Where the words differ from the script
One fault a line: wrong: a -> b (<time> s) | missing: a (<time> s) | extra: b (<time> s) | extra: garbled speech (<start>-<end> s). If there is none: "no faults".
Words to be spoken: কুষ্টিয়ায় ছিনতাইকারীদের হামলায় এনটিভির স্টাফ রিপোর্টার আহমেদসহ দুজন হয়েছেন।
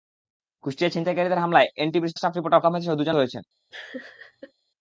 no faults